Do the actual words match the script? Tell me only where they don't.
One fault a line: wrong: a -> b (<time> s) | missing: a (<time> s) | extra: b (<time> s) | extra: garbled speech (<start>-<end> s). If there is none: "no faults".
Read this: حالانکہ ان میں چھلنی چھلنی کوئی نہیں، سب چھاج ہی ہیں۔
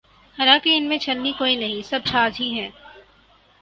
missing: چھلنی (1.3 s)